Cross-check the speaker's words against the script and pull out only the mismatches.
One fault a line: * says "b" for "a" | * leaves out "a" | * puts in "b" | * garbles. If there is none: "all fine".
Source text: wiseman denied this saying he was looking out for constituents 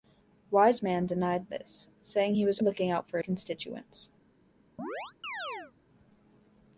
all fine